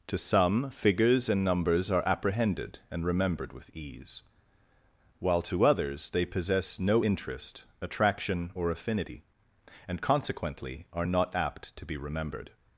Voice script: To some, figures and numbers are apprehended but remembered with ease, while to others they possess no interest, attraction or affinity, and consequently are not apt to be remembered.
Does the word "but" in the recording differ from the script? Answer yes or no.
yes